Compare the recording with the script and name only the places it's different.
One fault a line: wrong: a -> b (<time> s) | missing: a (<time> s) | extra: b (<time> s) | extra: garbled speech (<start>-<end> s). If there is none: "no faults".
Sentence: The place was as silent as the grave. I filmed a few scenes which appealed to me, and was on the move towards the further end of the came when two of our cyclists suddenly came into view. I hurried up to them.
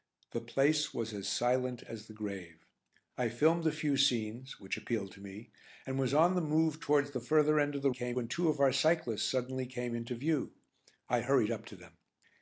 no faults